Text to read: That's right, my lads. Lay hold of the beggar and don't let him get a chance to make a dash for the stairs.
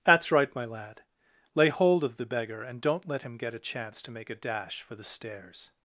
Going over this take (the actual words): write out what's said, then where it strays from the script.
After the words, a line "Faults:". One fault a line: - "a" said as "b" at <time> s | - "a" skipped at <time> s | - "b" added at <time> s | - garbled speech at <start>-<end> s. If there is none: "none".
That's right, my lad. Lay hold of the beggar and don't let him get a chance to make a dash for the stairs.
Faults:
- "lads" said as "lad" at 0.7 s